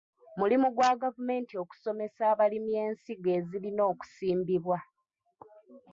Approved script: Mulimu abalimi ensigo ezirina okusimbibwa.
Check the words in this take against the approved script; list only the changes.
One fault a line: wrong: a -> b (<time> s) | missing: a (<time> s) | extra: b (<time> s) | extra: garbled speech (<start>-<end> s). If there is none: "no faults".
extra: gwa gavumenti okusomesa (0.8 s)